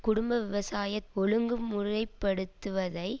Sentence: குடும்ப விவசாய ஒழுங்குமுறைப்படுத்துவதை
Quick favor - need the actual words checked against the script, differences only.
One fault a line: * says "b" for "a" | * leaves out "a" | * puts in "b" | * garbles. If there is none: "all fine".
all fine